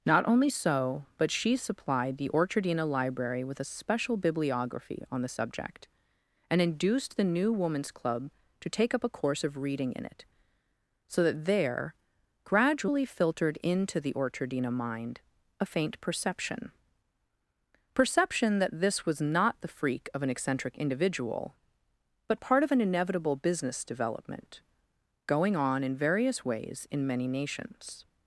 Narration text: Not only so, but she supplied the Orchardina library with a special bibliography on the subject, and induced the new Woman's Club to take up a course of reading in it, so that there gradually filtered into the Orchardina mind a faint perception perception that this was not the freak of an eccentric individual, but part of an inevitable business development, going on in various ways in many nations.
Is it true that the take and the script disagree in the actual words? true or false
false